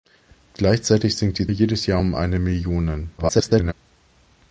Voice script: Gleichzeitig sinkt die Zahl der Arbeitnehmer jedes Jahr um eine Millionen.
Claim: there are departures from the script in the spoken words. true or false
true